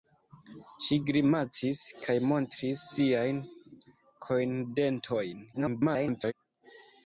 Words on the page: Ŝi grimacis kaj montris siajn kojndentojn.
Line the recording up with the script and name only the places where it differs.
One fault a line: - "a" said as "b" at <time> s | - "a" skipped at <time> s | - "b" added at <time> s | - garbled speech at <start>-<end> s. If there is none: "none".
- garbled speech at 5.5-6.3 s